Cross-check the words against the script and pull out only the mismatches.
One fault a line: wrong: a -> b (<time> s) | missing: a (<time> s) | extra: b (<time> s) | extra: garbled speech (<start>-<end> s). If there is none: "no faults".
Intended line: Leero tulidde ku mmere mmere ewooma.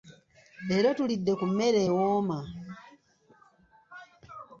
missing: mmere (1.8 s)